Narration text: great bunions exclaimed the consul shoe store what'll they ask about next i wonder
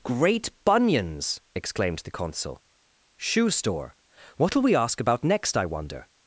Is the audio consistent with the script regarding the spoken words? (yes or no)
no